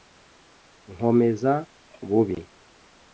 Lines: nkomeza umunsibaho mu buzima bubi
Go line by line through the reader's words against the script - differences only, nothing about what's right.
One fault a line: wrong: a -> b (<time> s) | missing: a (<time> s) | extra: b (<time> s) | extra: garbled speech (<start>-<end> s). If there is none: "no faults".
missing: umunsibaho mu buzima (1.5 s)